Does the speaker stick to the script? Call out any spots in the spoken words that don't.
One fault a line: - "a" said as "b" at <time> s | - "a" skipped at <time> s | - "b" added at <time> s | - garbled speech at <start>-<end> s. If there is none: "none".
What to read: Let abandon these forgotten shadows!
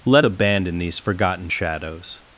none